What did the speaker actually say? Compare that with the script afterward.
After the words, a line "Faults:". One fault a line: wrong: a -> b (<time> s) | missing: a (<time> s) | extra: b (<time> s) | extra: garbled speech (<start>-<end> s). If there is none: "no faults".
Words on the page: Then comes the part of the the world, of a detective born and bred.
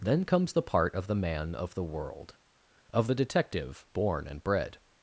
Then comes the part of the man of the world, of the detective born and bred.
Faults:
extra: man of (1.1 s)
wrong: a -> the (3.1 s)